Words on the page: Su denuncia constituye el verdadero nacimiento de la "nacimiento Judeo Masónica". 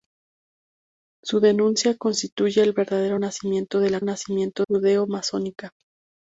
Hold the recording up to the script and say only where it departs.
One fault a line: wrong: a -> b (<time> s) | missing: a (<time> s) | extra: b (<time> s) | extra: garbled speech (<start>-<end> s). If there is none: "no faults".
no faults